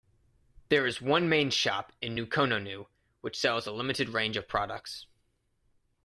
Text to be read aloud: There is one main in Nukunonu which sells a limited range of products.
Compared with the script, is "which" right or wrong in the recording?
right